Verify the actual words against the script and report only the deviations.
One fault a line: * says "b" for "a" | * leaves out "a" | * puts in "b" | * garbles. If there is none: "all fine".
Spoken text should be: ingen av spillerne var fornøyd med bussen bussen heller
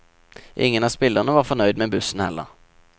* leaves out "bussen"